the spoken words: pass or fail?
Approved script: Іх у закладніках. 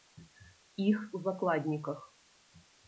pass